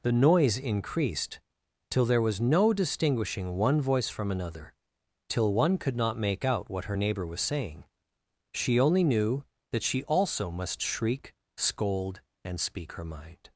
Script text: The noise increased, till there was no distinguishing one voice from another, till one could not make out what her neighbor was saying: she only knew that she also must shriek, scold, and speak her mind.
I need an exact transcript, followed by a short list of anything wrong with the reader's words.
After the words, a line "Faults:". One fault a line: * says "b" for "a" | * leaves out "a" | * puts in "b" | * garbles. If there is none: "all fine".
The noise increased, till there was no distinguishing one voice from another, till one could not make out what her neighbor was saying: she only knew that she also must shriek, scold, and speak her mind.
Faults:
all fine